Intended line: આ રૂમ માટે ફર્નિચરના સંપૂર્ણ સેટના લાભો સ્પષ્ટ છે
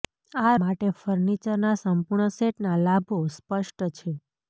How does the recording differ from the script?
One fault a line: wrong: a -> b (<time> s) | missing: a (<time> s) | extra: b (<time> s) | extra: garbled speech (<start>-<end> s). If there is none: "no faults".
missing: રૂમ (0.5 s)